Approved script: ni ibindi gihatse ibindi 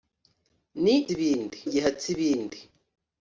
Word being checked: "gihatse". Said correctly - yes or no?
yes